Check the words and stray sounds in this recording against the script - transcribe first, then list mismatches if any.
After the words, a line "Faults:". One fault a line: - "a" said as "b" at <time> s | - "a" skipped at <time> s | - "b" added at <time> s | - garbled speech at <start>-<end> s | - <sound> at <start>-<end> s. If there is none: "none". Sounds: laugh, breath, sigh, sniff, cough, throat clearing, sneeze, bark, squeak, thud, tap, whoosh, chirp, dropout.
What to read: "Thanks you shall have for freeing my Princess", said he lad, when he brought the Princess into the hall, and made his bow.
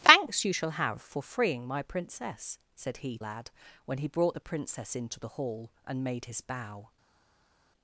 "Thanks you shall have for freeing my Princess", said he lad, when he brought the Princess into the hall, and made his bow.
Faults:
none